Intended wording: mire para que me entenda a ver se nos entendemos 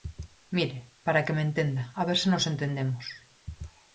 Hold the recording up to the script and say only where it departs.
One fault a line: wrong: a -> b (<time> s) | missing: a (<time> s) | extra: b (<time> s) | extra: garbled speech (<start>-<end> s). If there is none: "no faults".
no faults